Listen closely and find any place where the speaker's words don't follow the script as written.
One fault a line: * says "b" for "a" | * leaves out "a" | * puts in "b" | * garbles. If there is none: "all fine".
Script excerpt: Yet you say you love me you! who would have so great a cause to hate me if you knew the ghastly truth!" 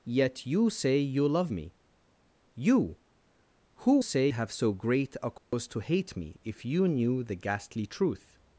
* says "say" for "would"